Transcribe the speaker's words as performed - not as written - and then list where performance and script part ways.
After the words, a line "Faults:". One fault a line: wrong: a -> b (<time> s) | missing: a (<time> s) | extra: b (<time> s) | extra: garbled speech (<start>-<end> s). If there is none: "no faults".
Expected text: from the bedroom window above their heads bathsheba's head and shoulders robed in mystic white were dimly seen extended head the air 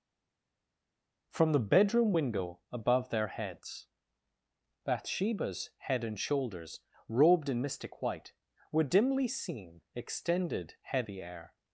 from the bedroom window above their heads bathsheba's head and shoulders robed in mystic white were dimly seen extended head the air
Faults:
no faults